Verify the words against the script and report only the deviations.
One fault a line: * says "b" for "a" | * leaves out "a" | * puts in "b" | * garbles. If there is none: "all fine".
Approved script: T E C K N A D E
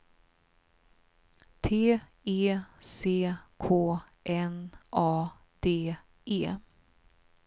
all fine